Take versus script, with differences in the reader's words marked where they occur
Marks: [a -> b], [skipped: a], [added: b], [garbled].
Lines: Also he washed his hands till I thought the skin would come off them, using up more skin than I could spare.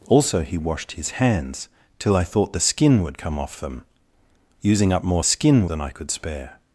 Also he washed his hands till I thought the skin would come off them, using up more skin than I could spare.